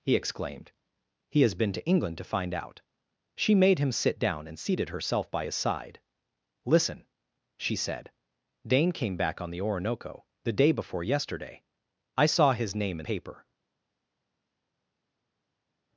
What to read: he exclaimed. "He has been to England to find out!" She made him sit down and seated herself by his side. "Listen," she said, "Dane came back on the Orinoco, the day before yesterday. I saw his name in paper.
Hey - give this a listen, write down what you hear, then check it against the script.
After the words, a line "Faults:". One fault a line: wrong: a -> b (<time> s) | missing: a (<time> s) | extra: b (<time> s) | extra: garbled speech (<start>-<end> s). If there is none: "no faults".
he exclaimed. "He has been to England to find out!" She made him sit down and seated herself by his side. "Listen," she said, "Dane came back on the Orinoco, the day before yesterday. I saw his name in paper.
Faults:
no faults